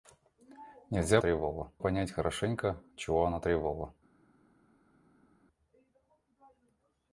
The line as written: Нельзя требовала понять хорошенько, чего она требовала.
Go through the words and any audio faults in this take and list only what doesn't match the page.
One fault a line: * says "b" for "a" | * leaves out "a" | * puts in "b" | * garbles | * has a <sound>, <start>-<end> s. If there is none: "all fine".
all fine